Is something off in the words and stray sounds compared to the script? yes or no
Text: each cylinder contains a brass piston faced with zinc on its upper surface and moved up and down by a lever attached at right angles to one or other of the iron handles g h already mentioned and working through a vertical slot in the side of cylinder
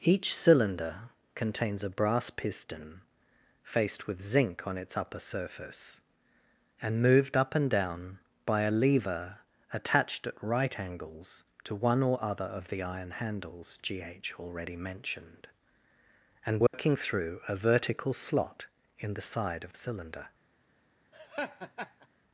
yes